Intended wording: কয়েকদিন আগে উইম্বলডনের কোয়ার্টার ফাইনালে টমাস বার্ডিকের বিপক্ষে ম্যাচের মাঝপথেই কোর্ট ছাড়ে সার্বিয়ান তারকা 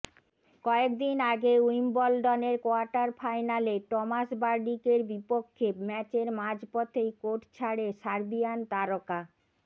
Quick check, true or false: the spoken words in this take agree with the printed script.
true